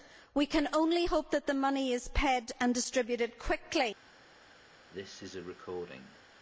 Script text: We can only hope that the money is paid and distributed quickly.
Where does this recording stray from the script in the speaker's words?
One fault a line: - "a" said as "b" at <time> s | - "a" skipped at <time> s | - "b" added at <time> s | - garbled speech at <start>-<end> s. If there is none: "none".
none